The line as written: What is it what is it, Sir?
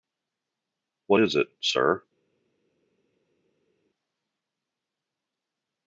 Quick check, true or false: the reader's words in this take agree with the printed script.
false